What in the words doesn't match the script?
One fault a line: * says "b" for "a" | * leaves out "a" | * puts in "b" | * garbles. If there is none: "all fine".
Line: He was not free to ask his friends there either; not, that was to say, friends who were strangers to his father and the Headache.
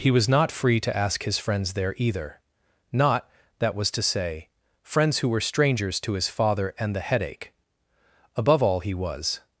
* puts in "Above all he was"